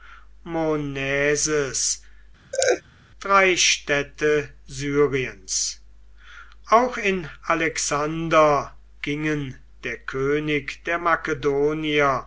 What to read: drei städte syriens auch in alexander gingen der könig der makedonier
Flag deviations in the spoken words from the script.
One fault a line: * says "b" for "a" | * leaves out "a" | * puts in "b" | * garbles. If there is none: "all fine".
all fine